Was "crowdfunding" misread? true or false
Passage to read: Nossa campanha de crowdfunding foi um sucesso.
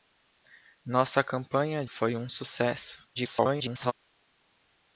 true